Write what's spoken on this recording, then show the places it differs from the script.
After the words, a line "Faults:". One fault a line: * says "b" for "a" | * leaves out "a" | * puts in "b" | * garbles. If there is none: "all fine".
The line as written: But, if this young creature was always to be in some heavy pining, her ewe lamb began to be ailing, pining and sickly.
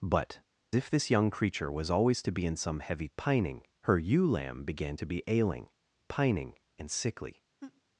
But, if this young creature was always to be in some heavy pining, her ewe lamb began to be ailing, pining and sickly.
Faults:
all fine